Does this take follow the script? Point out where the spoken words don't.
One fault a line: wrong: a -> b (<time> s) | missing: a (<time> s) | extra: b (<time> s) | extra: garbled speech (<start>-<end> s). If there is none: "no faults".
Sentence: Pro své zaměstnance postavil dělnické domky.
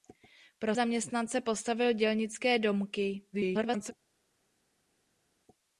missing: své (0.8 s)
extra: garbled speech (3.3-3.9 s)